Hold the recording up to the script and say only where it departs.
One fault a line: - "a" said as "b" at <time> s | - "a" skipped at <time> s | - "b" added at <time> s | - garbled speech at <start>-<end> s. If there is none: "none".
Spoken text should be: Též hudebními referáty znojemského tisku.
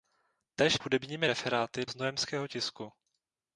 none